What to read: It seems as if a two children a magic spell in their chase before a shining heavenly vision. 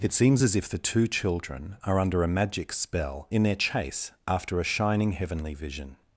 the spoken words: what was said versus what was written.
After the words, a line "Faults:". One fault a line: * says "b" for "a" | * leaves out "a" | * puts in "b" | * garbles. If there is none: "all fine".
It seems as if the two children are under a magic spell in their chase after a shining heavenly vision.
Faults:
* says "the" for "a"
* puts in "are under"
* says "after" for "before"